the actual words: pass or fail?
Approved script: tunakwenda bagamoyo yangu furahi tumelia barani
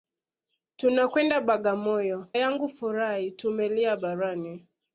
pass